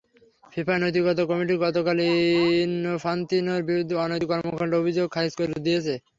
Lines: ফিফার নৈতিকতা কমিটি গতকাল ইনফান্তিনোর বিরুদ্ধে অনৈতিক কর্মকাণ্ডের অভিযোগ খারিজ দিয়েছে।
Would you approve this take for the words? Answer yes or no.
no